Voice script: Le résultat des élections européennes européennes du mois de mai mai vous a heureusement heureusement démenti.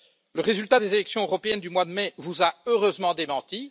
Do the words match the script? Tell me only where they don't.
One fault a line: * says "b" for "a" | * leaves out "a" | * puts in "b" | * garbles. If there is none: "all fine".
* leaves out "européennes"
* leaves out "mai"
* leaves out "heureusement"